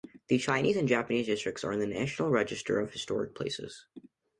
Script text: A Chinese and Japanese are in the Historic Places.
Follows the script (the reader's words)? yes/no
no